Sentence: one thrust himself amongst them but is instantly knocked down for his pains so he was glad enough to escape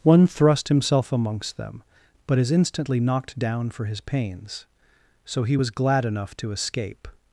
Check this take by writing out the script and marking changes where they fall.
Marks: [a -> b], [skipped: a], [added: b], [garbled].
one thrust himself amongst them but is instantly knocked down for his pains so he was glad enough to escape